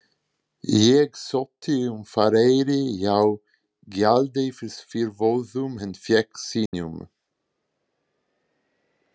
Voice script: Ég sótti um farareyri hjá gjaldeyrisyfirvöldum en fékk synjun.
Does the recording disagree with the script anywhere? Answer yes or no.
no